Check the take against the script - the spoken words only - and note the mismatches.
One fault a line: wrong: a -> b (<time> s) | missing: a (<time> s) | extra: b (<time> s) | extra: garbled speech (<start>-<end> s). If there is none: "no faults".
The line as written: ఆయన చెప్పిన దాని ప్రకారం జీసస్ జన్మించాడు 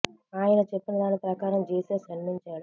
no faults